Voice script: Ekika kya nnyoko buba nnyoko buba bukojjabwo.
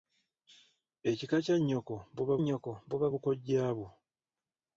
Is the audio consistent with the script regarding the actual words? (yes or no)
yes